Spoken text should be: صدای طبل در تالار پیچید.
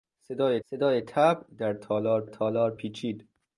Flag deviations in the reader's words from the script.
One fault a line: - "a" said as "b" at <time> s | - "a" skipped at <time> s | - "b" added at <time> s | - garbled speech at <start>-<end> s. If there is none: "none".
- "صدای" added at 0.7 s
- "تالار" added at 2.2 s